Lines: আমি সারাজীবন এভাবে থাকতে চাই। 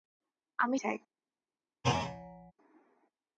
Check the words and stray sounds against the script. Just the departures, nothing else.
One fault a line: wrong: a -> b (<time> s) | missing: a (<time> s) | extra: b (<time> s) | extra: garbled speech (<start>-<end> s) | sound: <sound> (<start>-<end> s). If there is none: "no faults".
missing: সারাজীবন এভাবে থাকতে (0.8 s)
sound: thud (1.8-2.5 s)